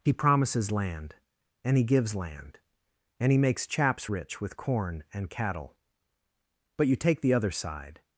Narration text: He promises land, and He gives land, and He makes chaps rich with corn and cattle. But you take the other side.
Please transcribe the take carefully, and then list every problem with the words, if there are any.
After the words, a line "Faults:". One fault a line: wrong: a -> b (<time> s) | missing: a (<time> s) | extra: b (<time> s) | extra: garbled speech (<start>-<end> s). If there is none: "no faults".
He promises land, and He gives land, and He makes chaps rich with corn and cattle. But you take the other side.
Faults:
no faults